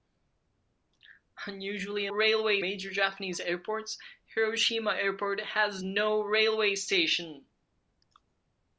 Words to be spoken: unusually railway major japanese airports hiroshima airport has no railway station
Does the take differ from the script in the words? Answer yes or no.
no